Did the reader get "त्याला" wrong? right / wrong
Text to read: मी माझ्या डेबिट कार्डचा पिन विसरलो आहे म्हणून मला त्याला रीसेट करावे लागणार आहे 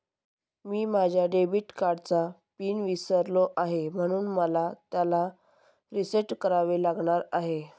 right